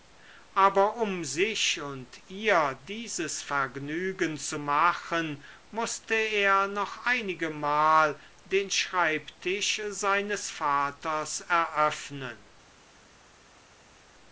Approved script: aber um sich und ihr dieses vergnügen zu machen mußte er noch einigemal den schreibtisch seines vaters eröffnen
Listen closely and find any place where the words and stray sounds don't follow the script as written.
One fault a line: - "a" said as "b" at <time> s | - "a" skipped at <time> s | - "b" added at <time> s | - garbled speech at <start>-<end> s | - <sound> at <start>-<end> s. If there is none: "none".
none